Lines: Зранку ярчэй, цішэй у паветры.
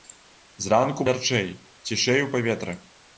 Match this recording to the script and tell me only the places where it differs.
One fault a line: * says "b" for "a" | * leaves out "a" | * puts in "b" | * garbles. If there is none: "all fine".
all fine